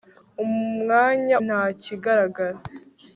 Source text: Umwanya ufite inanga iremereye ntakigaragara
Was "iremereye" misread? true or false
true